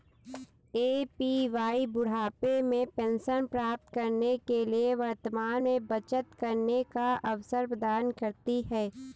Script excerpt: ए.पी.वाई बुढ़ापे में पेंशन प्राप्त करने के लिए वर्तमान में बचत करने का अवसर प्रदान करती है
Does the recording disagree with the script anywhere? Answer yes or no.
no